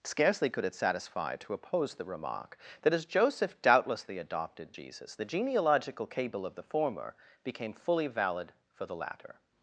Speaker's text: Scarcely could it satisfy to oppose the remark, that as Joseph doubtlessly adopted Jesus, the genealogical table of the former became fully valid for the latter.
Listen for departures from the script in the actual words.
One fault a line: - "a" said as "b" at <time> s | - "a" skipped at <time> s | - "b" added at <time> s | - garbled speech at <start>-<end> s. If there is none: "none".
- "table" said as "cable" at 6.1 s